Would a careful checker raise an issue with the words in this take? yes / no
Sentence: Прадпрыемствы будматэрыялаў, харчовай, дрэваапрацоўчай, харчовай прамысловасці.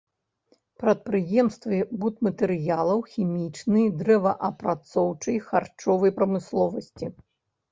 yes